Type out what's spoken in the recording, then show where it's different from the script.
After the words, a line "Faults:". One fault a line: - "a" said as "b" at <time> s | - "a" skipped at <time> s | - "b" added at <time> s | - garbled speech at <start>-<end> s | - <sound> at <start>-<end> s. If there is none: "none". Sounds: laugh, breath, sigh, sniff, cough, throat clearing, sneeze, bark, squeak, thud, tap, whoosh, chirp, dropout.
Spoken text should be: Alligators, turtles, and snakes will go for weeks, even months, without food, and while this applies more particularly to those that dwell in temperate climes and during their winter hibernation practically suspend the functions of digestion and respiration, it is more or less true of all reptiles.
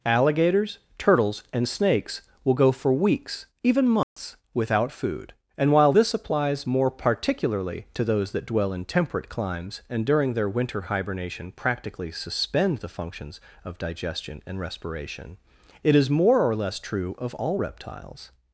Alligators, turtles, and snakes will go for weeks, even months, without food, and while this applies more particularly to those that dwell in temperate climes and during their winter hibernation practically suspend the functions of digestion and respiration, it is more or less true of all reptiles.
Faults:
- dropout at 4.0-4.2 s